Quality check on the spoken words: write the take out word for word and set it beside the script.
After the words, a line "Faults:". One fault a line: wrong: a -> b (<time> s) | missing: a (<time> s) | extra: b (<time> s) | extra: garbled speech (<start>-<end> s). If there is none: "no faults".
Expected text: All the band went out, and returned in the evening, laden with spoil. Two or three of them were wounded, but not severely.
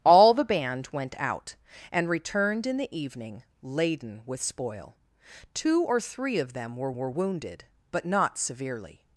All the band went out, and returned in the evening, laden with spoil. Two or three of them were were wounded, but not severely.
Faults:
extra: were (7.0 s)